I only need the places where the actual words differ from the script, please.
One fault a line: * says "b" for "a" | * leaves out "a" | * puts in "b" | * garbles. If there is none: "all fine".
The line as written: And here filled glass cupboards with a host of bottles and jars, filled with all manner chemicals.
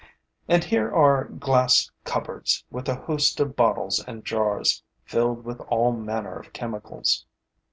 * says "are" for "filled"
* puts in "of"